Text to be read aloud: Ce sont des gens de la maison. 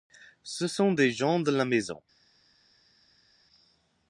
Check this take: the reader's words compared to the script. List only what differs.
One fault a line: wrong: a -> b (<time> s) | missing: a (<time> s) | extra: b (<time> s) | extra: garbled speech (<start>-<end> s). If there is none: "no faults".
no faults